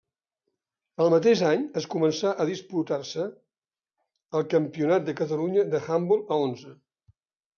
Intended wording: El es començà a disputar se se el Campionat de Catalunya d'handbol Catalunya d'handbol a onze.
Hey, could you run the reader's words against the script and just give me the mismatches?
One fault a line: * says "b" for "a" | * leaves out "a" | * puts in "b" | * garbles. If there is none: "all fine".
* puts in "mateix any"
* leaves out "se"
* leaves out "Catalunya d'handbol"